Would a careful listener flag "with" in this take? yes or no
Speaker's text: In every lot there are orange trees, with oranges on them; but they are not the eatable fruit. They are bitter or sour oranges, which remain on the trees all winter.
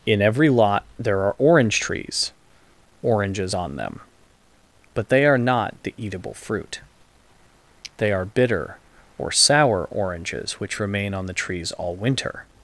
yes